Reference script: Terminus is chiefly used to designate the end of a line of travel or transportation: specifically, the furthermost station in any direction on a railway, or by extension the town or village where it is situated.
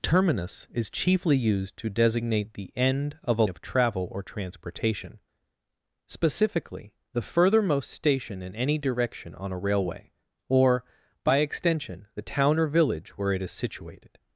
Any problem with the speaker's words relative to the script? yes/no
yes